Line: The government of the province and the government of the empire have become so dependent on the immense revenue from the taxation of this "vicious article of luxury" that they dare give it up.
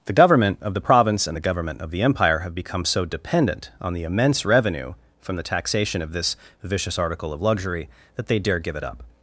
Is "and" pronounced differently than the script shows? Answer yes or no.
no